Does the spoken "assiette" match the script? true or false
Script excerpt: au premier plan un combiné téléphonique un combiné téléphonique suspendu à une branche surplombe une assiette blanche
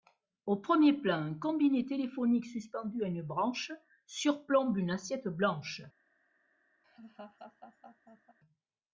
true